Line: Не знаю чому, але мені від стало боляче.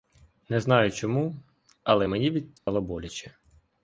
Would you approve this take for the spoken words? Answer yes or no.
yes